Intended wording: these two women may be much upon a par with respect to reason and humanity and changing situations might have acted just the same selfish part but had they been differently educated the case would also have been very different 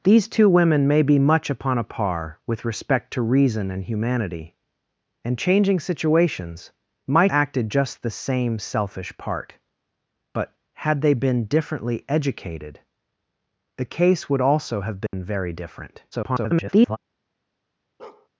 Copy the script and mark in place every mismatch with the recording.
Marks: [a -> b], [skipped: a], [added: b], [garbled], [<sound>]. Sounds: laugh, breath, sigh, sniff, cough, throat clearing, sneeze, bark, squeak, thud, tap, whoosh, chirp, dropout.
these two women may be much upon a par with respect to reason and humanity and changing situations might [skipped: have] acted just the same selfish part but had they been differently educated the case would also have been [dropout] very different [garbled] [bark]